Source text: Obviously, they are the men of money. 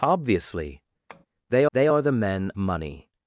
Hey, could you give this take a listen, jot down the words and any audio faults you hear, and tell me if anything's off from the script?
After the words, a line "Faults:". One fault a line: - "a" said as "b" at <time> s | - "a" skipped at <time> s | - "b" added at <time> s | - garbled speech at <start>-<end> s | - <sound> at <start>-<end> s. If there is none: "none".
Obviously, they they are the men money.
Faults:
- tap at 1.1-1.3 s
- "they" added at 1.7 s
- "of" skipped at 2.5 s